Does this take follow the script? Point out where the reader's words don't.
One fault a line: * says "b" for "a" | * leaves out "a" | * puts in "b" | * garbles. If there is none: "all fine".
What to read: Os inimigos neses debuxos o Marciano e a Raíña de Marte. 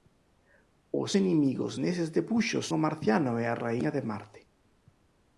all fine